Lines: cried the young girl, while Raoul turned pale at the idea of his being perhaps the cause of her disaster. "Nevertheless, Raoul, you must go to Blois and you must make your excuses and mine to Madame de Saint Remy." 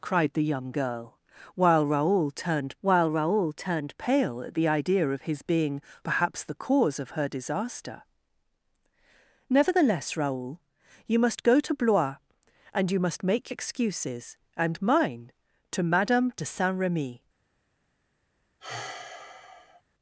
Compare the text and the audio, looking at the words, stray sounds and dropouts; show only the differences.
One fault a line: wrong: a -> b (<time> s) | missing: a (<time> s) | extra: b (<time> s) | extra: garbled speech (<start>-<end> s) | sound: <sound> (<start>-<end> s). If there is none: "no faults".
extra: while Raoul turned (2.8 s)
missing: your (13.5 s)
sound: sigh (18.6-19.8 s)